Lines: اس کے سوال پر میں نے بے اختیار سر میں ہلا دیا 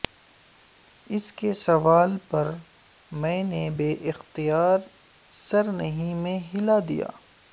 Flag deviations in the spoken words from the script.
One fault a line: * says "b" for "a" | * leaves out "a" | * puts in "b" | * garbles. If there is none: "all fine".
* puts in "نہیں"